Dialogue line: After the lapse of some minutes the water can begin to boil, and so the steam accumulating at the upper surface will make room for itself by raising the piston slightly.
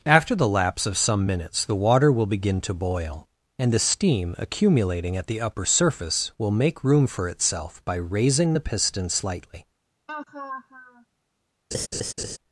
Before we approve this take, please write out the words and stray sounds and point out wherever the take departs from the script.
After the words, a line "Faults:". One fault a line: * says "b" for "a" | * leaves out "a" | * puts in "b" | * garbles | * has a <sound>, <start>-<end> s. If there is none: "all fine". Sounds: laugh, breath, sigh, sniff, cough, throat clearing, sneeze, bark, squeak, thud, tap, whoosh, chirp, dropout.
After the lapse of some minutes the water will begin to boil, and the steam accumulating at the upper surface will make room for itself by raising the piston slightly.
Faults:
* says "will" for "can"
* leaves out "so"
* has a laugh, 10.1-11.1 s
* has a laugh, 11.7-12.4 s